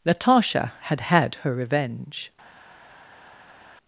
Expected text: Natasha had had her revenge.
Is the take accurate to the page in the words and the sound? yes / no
yes